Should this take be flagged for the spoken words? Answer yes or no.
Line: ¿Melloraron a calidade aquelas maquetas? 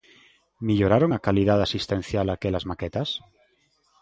yes